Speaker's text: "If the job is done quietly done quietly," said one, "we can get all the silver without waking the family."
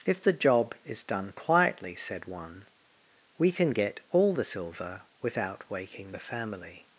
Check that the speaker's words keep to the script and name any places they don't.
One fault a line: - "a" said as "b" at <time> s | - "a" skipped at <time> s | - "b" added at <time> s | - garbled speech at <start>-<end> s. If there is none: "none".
- "done quietly" skipped at 1.9 s